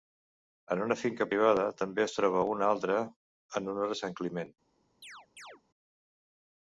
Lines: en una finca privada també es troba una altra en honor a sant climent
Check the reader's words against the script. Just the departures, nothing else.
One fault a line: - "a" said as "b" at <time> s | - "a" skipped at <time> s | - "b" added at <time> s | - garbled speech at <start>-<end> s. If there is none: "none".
none